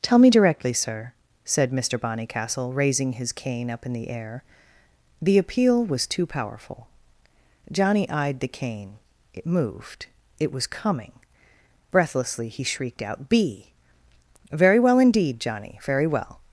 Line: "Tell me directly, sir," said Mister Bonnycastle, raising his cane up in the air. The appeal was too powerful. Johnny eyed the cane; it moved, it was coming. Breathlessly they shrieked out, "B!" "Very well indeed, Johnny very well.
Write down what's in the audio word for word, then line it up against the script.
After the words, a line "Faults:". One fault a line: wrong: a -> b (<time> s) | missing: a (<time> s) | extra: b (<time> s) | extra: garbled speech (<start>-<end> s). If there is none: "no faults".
"Tell me directly, sir," said Mister Bonnycastle, raising his cane up in the air. The appeal was too powerful. Johnny eyed the cane; it moved, it was coming. Breathlessly he shrieked out, "B!" "Very well indeed, Johnny very well.
Faults:
wrong: they -> he (12.5 s)